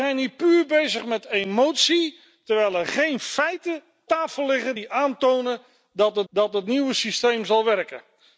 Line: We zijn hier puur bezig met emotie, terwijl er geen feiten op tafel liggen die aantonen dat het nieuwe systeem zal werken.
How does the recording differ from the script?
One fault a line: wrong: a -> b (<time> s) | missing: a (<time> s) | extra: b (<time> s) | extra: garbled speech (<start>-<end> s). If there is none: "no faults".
missing: op (3.8 s)
extra: dat het (6.3 s)